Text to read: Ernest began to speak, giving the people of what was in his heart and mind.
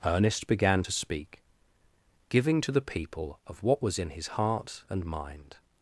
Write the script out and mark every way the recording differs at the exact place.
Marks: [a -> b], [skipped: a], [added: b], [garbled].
Ernest began to speak, giving [added: to] the people of what was in his heart and mind.